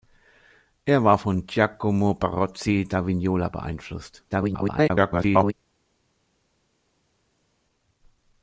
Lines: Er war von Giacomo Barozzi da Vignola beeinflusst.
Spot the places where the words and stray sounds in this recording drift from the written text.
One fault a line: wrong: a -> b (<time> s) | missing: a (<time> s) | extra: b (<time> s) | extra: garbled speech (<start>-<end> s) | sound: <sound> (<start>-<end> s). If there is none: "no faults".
extra: garbled speech (4.3-5.5 s)